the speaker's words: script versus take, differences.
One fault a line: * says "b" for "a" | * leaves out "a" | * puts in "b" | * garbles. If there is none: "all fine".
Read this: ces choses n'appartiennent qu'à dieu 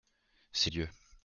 * leaves out "choses n'appartiennent qu'à"